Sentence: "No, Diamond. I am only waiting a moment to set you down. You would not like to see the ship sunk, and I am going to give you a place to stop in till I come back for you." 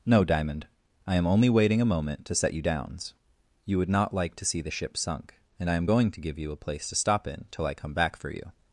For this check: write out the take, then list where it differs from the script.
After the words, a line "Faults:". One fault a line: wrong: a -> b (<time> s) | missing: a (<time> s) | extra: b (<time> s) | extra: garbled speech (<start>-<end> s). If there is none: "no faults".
"No, Diamond. I am only waiting a moment to set you downs. You would not like to see the ship sunk, and I am going to give you a place to stop in till I come back for you."
Faults:
wrong: down -> downs (2.6 s)